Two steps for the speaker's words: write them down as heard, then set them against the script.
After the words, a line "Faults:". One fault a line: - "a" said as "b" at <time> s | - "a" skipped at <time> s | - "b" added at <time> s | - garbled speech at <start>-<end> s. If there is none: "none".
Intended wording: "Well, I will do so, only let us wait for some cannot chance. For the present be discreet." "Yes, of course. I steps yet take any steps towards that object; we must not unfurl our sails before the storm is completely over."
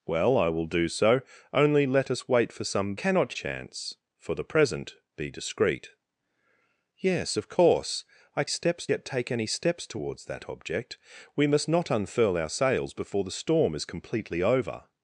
"Well, I will do so, only let us wait for some cannot chance. For the present be discreet." "Yes, of course. I steps yet take any steps towards that object; we must not unfurl our sails before the storm is completely over."
Faults:
none